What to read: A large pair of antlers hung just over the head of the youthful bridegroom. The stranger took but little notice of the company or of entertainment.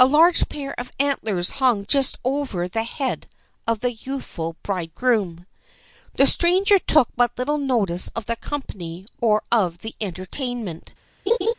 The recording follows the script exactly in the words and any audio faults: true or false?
false